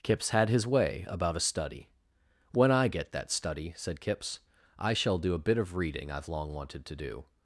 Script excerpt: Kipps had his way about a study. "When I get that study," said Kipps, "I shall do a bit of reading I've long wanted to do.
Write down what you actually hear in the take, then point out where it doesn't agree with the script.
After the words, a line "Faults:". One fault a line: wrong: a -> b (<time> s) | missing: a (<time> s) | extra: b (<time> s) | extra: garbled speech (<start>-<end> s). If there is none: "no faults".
Kipps had his way about a study. "When I get that study," said Kipps, "I shall do a bit of reading I've long wanted to do.
Faults:
no faults